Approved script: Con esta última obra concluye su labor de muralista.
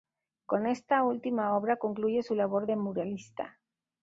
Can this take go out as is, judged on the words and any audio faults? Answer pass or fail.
pass